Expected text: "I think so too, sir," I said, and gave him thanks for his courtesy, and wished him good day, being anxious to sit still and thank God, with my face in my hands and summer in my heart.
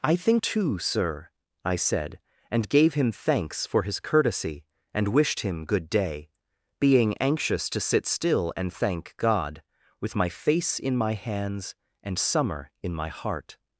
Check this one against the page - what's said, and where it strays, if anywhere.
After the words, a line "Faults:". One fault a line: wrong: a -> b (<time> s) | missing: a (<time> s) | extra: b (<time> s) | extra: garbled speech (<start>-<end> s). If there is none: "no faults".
"I think too, sir," I said, and gave him thanks for his courtesy, and wished him good day, being anxious to sit still and thank God, with my face in my hands and summer in my heart.
Faults:
missing: so (0.4 s)